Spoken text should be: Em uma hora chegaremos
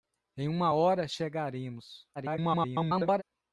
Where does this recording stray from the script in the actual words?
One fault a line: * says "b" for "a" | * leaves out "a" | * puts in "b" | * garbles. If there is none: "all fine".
* garbles